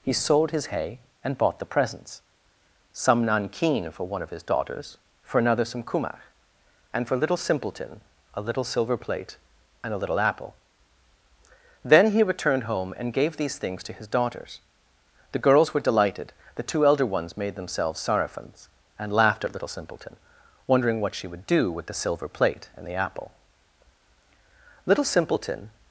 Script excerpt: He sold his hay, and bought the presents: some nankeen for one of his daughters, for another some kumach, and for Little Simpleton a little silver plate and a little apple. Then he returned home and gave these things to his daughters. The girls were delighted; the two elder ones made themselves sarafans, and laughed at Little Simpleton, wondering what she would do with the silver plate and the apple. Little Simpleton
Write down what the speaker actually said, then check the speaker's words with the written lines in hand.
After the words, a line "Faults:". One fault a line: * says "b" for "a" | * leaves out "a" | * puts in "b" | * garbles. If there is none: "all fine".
He sold his hay, and bought the presents: some nankeen for one of his daughters, for another some kumach, and for Little Simpleton a little silver plate and a little apple. Then he returned home and gave these things to his daughters. The girls were delighted; the two elder ones made themselves sarafans, and laughed at Little Simpleton, wondering what she would do with the silver plate and the apple. Little Simpleton
Faults:
all fine